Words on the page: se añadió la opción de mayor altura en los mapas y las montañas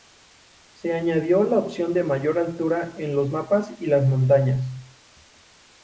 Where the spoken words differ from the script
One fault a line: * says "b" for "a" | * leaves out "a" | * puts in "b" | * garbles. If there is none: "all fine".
all fine